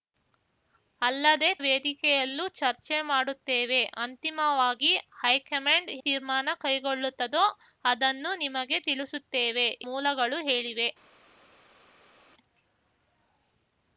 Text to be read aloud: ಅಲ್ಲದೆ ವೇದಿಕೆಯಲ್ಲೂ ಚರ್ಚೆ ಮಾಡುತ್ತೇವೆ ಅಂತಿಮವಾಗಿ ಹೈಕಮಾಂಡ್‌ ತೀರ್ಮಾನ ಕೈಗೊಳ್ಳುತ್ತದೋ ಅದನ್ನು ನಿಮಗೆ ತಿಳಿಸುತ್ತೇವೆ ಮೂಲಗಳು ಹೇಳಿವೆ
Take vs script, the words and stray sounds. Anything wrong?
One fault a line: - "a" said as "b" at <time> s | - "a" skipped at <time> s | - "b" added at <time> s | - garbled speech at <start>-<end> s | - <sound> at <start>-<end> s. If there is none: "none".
none